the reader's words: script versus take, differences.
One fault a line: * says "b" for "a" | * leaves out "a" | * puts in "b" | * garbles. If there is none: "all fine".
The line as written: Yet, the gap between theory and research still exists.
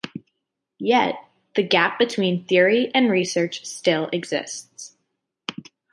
all fine